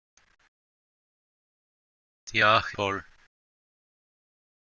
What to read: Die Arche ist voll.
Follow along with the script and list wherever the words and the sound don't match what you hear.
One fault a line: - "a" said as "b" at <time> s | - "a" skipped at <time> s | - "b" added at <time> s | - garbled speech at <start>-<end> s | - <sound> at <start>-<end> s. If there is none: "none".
- "ist" skipped at 2.8 s